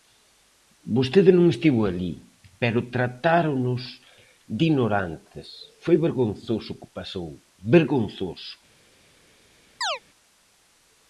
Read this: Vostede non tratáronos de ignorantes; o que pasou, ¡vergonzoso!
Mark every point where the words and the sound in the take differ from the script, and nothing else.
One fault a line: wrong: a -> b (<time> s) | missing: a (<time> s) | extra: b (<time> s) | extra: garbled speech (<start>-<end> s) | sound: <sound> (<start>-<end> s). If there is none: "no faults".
extra: estivo alí pero (1.5 s)
extra: foi vergonzoso (5.8 s)
sound: chirp (9.8-10.0 s)